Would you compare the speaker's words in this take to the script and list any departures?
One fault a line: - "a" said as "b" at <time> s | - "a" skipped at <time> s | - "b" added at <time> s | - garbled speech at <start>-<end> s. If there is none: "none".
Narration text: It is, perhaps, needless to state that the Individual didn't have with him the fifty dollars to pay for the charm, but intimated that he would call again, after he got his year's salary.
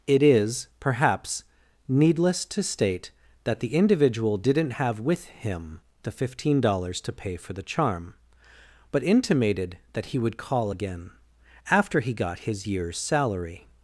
- "fifty" said as "fifteen" at 6.1 s